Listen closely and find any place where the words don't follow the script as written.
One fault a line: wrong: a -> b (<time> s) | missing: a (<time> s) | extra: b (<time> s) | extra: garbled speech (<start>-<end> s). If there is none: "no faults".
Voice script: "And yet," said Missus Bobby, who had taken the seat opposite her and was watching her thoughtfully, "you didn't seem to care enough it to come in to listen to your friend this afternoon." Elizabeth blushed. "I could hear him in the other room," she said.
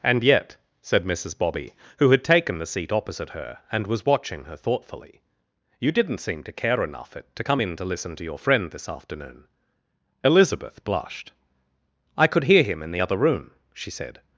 no faults